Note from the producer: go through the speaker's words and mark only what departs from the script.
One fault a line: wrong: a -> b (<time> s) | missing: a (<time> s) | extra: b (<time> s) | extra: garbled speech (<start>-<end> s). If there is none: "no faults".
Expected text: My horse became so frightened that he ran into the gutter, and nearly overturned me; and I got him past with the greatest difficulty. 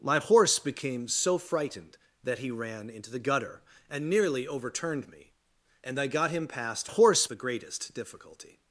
wrong: with -> horse (6.8 s)